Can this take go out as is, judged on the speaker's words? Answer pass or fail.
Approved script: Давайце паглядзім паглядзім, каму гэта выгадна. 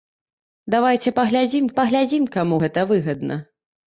pass